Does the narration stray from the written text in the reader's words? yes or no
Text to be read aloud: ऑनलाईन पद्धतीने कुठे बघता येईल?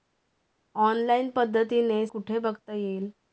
no